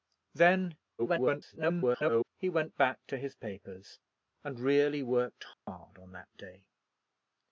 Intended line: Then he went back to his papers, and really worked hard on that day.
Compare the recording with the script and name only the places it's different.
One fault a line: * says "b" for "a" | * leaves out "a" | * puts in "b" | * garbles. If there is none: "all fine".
* garbles